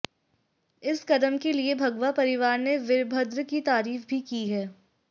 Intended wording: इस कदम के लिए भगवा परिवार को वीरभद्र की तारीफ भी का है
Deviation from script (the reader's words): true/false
true